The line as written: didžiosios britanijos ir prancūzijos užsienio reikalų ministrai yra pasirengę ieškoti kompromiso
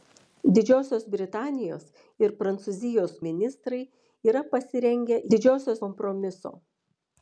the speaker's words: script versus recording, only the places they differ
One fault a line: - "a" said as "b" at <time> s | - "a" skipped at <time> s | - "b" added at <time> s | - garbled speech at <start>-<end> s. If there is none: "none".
- "užsienio reikalų" skipped at 3.1 s
- "ieškoti" said as "didžiosios" at 5.3 s